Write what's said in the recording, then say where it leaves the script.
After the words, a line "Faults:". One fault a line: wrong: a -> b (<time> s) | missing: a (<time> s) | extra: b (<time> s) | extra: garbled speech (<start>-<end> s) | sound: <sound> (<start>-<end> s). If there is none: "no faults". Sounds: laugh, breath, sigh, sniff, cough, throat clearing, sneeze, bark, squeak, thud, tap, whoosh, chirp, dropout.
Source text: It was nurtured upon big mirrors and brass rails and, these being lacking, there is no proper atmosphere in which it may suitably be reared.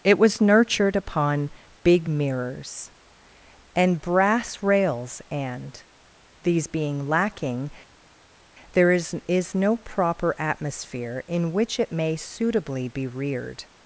It was nurtured upon big mirrors and brass rails and, these being lacking, there is is no proper atmosphere in which it may suitably be reared.
Faults:
extra: is (9.3 s)